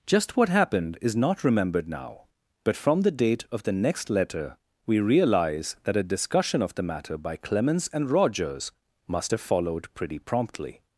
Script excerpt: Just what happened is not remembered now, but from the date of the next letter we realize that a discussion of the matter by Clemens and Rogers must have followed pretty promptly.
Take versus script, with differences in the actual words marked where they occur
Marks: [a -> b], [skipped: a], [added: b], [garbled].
Just what happened is not remembered now, but from the date of the next letter we realize that a discussion of the matter by Clemens and Rogers must have followed pretty promptly.